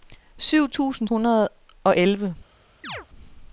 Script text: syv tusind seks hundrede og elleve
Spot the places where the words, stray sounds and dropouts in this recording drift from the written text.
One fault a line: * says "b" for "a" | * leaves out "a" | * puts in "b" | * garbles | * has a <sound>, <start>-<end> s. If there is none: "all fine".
* leaves out "seks"
* has a chirp, 2.8-3.1 s